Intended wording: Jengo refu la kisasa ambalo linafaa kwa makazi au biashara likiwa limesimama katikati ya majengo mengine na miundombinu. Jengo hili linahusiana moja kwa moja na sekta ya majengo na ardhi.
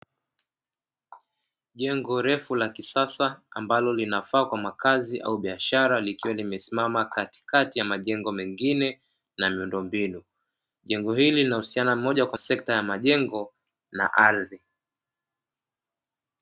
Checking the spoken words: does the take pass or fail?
fail